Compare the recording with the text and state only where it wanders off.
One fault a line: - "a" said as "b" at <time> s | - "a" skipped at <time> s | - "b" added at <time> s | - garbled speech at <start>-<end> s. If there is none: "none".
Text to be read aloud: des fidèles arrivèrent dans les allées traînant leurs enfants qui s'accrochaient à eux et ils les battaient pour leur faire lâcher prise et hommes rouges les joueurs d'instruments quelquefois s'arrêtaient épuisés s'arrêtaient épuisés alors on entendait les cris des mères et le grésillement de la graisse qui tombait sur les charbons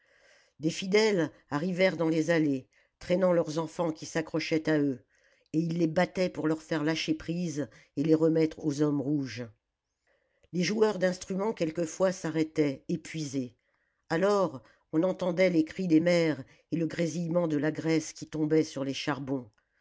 - "les remettre aux" added at 8.0 s
- "s'arrêtaient épuisés" skipped at 13.6 s